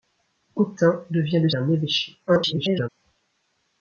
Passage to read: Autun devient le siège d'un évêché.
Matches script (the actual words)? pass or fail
fail